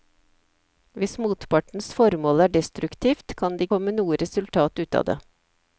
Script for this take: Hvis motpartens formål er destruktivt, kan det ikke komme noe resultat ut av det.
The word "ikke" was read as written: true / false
false